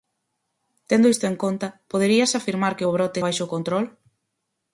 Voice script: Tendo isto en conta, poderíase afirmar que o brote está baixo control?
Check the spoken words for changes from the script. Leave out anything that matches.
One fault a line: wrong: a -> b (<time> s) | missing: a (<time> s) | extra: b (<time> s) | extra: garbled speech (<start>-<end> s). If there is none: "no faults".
missing: está (3.2 s)